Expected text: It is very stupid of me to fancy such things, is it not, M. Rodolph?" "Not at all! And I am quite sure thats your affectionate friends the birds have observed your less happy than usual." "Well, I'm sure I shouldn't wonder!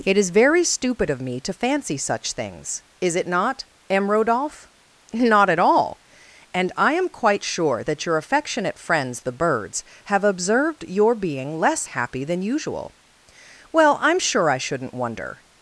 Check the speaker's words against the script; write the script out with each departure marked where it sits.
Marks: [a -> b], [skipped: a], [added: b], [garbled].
It is very stupid of me to fancy such things, is it not, M. Rodolph?" "Not at all! And I am quite sure [thats -> that] your affectionate friends the birds have observed your [added: being] less happy than usual." "Well, I'm sure I shouldn't wonder!